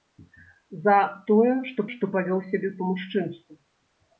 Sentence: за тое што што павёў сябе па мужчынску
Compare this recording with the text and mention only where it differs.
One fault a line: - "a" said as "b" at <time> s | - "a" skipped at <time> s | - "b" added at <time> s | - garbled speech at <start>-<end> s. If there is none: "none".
none